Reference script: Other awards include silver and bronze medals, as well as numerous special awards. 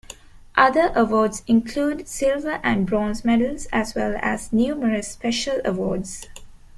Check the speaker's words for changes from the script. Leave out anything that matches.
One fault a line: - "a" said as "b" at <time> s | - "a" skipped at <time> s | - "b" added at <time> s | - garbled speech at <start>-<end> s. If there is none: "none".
none